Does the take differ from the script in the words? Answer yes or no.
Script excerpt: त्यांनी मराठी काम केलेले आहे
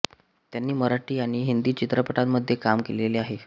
yes